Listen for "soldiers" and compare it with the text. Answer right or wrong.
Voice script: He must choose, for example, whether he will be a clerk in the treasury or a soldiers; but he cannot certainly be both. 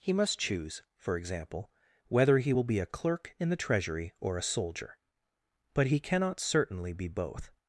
wrong